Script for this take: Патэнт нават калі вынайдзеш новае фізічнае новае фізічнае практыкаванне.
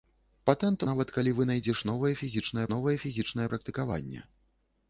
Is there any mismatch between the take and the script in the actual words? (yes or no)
no